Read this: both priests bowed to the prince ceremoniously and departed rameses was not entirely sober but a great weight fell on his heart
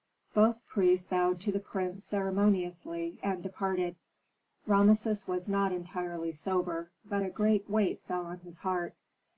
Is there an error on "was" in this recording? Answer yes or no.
no